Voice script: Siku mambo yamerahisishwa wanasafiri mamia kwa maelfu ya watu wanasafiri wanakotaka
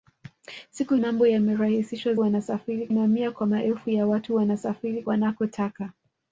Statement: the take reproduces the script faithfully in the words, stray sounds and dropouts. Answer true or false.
true